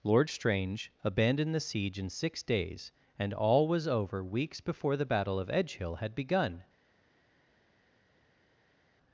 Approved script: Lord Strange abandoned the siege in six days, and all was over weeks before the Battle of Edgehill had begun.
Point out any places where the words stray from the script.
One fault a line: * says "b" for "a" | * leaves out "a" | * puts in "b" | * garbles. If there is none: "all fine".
all fine